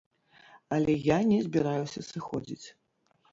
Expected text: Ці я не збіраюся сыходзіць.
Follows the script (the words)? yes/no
no